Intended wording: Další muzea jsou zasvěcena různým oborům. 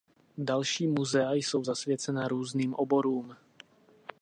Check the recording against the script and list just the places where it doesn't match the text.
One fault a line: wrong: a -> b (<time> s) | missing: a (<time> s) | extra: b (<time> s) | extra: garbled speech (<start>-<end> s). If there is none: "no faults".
no faults